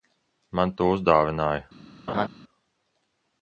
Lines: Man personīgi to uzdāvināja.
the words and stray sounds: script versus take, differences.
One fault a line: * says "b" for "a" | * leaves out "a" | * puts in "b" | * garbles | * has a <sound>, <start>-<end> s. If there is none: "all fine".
* leaves out "personīgi"
* has a laugh, 2.1-2.3 s